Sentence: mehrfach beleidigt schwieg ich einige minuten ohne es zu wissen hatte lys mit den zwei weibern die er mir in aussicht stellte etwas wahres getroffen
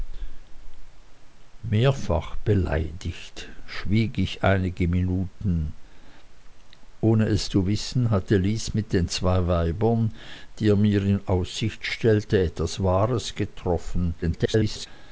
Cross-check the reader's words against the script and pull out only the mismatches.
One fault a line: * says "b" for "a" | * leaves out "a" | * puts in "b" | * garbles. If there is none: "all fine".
* garbles